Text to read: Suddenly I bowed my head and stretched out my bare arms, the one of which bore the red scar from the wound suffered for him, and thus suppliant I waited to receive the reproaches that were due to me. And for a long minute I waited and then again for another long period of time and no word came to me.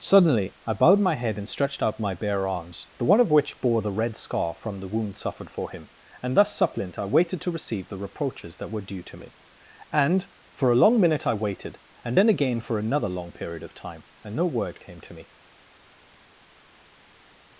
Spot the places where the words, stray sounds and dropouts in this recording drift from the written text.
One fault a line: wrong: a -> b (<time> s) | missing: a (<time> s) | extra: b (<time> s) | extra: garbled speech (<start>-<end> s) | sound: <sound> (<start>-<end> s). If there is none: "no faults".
no faults